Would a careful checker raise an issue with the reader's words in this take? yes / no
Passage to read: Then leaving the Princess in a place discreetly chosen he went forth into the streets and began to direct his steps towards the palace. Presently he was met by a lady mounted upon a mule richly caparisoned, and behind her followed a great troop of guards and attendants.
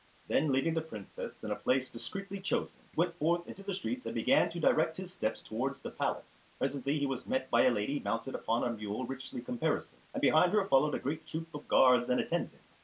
no